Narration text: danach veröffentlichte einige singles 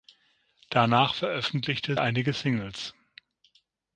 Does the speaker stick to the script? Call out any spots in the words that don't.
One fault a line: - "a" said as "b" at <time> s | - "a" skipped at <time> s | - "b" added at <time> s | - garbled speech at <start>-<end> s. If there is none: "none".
none